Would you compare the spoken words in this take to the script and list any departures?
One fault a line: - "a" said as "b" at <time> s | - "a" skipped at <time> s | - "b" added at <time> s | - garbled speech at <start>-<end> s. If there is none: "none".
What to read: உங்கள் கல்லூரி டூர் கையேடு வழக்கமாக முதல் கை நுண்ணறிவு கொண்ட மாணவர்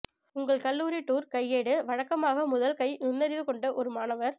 - "ஒரு" added at 3.7 s